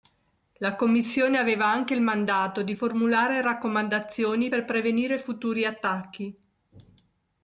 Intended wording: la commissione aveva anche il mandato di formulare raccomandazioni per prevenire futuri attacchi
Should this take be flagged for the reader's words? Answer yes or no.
no